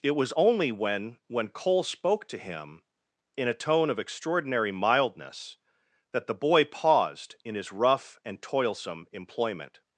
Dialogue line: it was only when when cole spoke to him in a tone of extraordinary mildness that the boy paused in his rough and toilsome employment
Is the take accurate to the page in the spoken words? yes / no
yes